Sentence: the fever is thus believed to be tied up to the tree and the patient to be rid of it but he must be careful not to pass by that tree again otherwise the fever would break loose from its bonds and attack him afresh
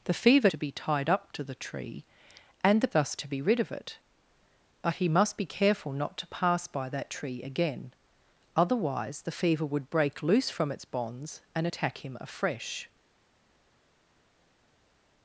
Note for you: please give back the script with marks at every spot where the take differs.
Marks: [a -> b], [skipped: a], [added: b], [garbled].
the fever [skipped: is thus believed] to be tied up to the tree and the [patient -> thus] to be rid of it but he must be careful not to pass by that tree again otherwise the fever would break loose from its bonds and attack him afresh